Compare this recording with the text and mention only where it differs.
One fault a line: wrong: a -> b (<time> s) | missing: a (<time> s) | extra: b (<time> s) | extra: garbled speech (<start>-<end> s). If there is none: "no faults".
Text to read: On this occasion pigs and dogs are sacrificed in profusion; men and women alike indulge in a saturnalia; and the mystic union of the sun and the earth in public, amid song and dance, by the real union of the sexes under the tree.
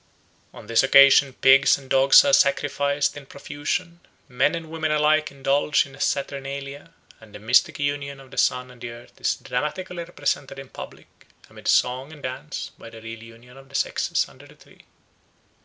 extra: is dramatically represented (9.2 s)